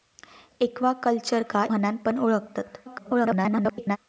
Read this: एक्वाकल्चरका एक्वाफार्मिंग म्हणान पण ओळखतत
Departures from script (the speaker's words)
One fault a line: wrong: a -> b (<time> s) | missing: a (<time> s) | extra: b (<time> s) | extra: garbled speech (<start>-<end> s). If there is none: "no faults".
missing: एक्वाफार्मिंग (1.6 s)
extra: garbled speech (2.9-4.0 s)